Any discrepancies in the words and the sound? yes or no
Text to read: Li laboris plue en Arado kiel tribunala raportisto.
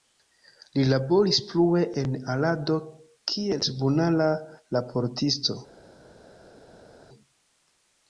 no